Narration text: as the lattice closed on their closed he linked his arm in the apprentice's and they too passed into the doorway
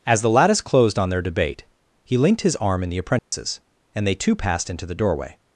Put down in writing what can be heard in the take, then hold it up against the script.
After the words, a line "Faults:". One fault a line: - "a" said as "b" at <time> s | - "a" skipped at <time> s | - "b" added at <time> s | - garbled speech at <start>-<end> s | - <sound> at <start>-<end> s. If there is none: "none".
as the lattice closed on their debate he linked his arm in the apprentice's and they too passed into the doorway
Faults:
- "closed" said as "debate" at 1.2 s
- dropout at 3.2-3.3 s